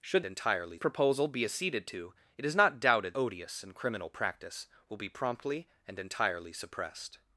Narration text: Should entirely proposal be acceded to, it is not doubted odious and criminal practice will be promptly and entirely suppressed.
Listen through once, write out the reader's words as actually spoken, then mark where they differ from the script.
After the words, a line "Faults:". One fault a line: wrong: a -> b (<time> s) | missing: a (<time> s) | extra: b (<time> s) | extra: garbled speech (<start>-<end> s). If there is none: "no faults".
Should entirely proposal be acceded to, it is not doubted odious and criminal practice will be promptly and entirely suppressed.
Faults:
no faults